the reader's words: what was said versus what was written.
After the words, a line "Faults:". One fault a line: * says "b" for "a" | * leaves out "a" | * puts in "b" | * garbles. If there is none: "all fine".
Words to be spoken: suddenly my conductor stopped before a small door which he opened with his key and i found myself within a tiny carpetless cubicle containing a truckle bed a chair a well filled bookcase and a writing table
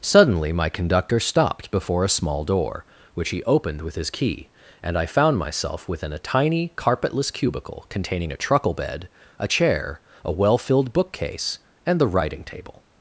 suddenly my conductor stopped before a small door which he opened with his key and i found myself within a tiny carpetless cubicle containing a truckle bed a chair a well filled bookcase and the writing table
Faults:
* says "the" for "a"